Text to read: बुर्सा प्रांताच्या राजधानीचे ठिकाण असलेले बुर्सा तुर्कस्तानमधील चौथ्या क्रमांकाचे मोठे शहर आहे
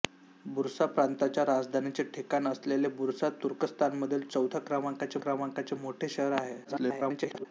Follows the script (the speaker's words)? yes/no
no